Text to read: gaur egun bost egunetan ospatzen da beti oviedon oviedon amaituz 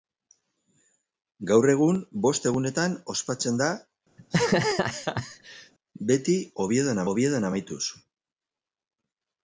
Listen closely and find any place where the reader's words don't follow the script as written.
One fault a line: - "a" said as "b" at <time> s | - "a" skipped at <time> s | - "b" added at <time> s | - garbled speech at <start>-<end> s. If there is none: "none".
none